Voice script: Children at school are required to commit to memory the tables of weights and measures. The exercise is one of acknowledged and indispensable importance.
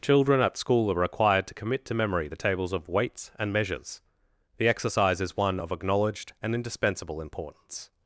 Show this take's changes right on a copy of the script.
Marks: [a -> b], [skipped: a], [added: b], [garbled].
Children at school are required to commit to memory the tables of weights and measures. The exercise is one of acknowledged and indispensable importance.